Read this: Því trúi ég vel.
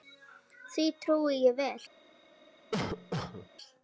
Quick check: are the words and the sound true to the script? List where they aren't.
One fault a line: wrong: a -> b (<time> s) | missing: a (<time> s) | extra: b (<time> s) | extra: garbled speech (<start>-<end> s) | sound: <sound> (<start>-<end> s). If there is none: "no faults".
sound: cough (2.7-3.5 s)